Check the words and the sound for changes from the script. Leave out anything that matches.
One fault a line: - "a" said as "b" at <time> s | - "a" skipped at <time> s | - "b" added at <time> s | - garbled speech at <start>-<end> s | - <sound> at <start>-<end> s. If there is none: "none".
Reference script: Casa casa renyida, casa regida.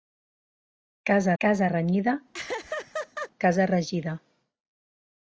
- laugh at 2.3-3.3 s